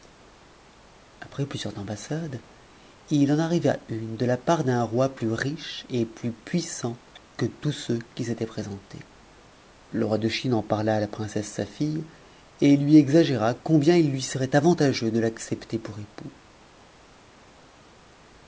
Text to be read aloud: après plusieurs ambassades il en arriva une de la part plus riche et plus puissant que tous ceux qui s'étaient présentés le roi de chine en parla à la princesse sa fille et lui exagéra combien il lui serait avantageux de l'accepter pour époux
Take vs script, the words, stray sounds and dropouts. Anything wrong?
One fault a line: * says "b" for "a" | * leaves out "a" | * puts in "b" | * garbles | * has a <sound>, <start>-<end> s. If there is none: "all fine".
* puts in "d'un roi"